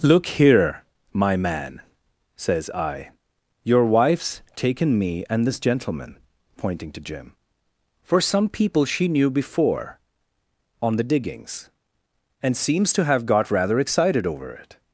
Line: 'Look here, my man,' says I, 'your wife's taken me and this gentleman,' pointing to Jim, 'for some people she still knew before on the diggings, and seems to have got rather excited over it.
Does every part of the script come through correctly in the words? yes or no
no